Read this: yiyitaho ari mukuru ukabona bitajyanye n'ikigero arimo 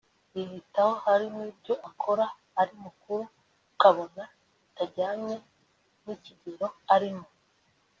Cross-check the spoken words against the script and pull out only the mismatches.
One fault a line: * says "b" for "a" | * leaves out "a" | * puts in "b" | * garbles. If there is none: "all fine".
* puts in "hari n'ibyo akora"